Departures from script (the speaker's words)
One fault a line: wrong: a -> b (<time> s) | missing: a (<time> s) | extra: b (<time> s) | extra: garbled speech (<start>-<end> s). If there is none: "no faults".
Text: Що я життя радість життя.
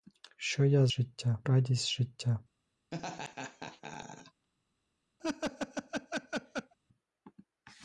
no faults